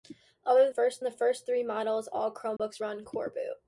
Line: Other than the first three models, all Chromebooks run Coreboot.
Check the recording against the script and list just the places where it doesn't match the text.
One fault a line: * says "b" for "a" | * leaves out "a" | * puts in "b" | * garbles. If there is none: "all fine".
* says "first" for "than"